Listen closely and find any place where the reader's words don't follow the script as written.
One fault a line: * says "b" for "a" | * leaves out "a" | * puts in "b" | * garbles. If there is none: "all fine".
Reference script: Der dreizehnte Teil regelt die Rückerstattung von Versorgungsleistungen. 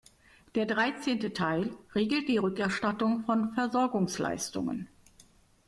all fine